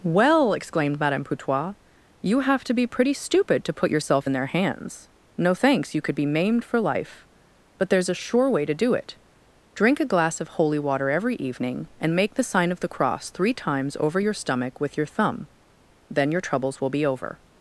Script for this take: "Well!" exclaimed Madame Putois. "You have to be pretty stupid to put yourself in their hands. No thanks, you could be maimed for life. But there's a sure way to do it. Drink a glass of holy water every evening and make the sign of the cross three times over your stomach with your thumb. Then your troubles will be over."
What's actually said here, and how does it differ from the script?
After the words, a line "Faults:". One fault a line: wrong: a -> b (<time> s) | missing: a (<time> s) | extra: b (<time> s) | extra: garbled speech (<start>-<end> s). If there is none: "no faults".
"Well!" exclaimed Madame Putois. "You have to be pretty stupid to put yourself in their hands. No thanks, you could be maimed for life. But there's a sure way to do it. Drink a glass of holy water every evening and make the sign of the cross three times over your stomach with your thumb. Then your troubles will be over."
Faults:
no faults